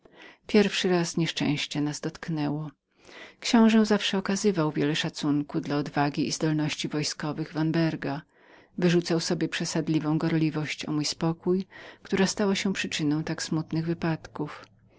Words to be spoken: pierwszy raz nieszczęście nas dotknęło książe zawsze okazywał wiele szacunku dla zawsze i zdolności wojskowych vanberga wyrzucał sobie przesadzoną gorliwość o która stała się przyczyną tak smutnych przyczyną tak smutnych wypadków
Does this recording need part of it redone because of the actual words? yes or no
yes